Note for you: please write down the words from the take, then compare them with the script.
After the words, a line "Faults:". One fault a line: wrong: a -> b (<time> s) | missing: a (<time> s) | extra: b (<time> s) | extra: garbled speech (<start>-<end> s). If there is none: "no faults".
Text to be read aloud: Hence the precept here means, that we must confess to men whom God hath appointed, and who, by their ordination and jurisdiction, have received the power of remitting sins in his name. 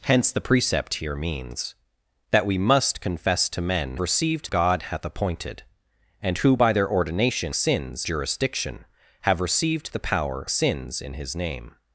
Hence the precept here means, that we must confess to men received God hath appointed, and who, by their ordination sins jurisdiction, have received the power sins in his name.
Faults:
wrong: whom -> received (4.0 s)
wrong: and -> sins (7.5 s)
missing: of remitting (10.5 s)